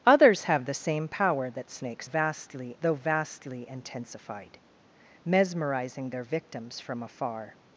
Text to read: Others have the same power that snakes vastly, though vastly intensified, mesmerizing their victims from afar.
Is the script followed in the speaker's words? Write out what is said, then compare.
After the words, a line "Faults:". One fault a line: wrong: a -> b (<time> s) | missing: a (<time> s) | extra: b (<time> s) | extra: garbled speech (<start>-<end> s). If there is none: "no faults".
Others have the same power that snakes vastly, though vastly intensified, mesmerizing their victims from afar.
Faults:
no faults